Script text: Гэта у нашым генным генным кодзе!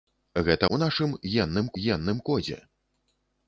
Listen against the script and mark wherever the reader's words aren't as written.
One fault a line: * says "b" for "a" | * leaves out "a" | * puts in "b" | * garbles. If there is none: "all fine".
all fine